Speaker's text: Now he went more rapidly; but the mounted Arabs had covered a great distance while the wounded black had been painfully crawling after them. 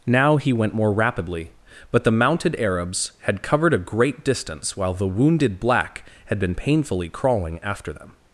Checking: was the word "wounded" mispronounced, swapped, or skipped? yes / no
no